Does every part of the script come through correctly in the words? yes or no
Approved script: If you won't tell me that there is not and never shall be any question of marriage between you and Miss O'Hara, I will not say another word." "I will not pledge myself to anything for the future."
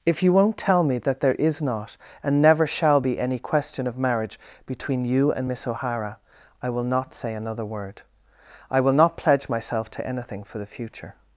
yes